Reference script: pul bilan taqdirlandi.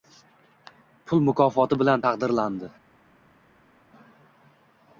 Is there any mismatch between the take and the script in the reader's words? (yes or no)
yes